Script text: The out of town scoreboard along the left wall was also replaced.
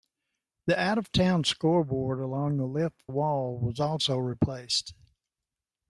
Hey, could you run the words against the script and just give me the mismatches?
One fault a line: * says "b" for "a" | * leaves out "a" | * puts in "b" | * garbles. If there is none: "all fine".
all fine